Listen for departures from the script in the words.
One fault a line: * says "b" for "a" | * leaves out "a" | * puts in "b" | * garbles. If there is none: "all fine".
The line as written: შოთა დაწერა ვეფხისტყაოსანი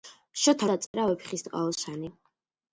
all fine